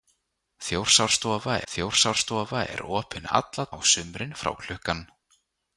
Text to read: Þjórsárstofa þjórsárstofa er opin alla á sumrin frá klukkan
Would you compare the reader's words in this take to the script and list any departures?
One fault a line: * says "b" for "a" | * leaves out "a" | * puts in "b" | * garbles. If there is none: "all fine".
all fine